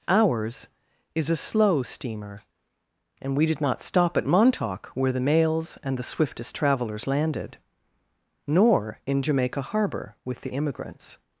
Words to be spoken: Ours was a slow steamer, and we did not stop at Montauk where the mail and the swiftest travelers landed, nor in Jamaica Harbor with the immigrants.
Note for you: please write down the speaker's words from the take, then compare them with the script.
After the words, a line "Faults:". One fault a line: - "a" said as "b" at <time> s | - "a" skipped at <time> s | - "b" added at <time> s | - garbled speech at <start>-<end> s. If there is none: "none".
Ours is a slow steamer, and we did not stop at Montauk where the mails and the swiftest travelers landed, nor in Jamaica Harbor with the immigrants.
Faults:
- "was" said as "is" at 1.1 s
- "mail" said as "mails" at 5.2 s